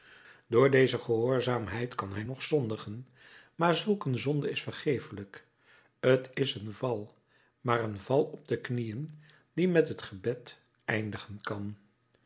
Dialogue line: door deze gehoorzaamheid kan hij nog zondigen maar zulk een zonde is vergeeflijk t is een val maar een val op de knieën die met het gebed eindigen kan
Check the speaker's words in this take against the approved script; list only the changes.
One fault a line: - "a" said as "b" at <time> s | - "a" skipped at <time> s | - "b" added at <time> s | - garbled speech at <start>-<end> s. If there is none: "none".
none